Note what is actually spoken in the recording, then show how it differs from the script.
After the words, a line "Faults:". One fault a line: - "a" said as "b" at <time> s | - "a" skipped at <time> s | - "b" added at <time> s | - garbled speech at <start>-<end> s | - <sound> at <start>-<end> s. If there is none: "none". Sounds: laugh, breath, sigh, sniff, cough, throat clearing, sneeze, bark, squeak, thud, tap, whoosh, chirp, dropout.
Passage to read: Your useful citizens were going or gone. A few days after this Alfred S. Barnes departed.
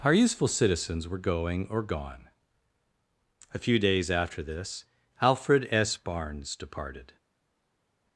Our useful citizens were going or gone. A few days after this Alfred S. Barnes departed.
Faults:
- "Your" said as "Our" at 0.0 s